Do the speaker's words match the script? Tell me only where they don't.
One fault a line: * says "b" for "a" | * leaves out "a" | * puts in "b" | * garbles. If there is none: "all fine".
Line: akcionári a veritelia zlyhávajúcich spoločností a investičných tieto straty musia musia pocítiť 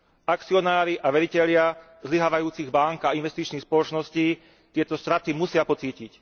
* says "bánk" for "spoločností"
* puts in "spoločností"
* leaves out "musia"